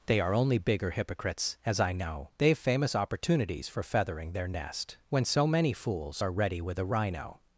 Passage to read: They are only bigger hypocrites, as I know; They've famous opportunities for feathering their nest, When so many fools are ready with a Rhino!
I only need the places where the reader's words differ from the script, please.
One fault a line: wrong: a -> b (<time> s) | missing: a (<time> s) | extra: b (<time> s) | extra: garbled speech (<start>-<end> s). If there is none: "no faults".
no faults